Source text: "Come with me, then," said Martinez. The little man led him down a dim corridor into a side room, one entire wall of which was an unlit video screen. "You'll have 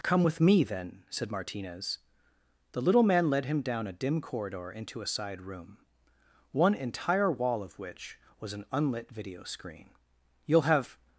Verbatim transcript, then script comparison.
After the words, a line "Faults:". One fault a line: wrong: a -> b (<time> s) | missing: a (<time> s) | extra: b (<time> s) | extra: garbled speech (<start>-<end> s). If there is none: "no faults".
"Come with me, then," said Martinez. The little man led him down a dim corridor into a side room, one entire wall of which was an unlit video screen. "You'll have
Faults:
no faults